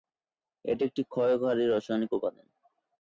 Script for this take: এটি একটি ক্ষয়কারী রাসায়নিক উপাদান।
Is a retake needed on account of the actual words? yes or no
no